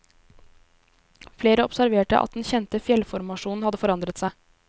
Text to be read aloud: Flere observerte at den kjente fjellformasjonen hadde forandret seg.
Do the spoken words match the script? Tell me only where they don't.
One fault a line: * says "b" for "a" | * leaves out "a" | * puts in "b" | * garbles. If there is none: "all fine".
all fine